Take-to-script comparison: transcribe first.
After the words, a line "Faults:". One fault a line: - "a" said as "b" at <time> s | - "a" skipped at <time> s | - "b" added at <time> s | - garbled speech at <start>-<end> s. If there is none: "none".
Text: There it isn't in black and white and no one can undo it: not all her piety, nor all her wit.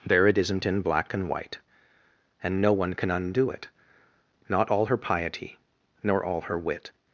There it isn't in black and white and no one can undo it: not all her piety, nor all her wit.
Faults:
none